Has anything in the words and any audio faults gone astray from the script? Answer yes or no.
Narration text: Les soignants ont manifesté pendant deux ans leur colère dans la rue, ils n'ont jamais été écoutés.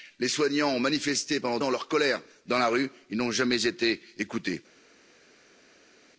yes